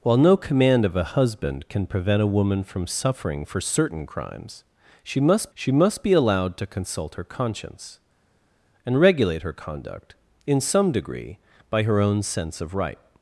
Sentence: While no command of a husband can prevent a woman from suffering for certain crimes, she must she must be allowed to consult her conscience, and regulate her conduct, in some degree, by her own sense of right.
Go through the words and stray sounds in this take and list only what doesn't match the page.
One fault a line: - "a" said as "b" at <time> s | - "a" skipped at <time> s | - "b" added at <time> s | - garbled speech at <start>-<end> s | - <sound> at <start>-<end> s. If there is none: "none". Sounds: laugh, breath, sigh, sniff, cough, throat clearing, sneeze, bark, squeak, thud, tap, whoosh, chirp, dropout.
none